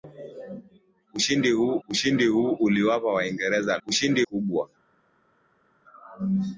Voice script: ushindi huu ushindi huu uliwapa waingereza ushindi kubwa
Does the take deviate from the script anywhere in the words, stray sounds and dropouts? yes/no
no